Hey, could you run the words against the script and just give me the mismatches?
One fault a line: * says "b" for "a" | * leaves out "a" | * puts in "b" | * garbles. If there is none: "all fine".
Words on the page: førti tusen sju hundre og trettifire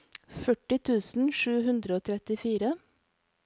all fine